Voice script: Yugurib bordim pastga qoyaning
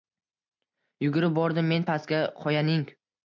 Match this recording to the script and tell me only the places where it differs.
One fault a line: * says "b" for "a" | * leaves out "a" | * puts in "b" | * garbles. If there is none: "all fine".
* puts in "men"